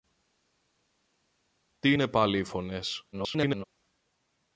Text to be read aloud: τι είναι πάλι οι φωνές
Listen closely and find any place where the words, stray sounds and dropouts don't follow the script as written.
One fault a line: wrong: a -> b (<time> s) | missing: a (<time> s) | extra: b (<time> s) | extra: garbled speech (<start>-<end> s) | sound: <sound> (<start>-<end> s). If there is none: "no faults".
extra: garbled speech (3.1-3.6 s)